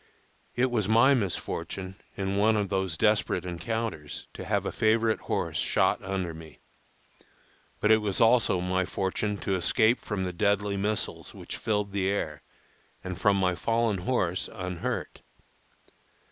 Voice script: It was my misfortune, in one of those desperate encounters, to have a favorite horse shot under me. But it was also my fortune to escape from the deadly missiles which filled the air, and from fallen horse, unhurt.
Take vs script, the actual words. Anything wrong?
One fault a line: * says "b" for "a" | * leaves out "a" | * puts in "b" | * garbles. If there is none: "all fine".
* puts in "my"